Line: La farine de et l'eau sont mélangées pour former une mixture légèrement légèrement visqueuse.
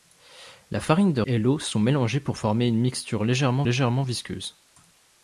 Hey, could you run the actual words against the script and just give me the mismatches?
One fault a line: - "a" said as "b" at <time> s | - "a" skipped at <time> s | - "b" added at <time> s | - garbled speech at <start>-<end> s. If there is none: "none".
none